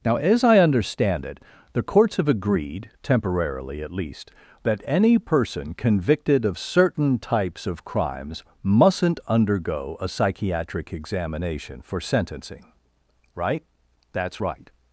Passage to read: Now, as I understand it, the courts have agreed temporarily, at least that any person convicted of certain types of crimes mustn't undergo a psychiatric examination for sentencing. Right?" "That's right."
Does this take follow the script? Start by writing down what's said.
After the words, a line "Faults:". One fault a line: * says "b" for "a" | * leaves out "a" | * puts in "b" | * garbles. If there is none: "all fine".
Now, as I understand it, the courts have agreed temporarily, at least that any person convicted of certain types of crimes mustn't undergo a psychiatric examination for sentencing. Right?" "That's right."
Faults:
all fine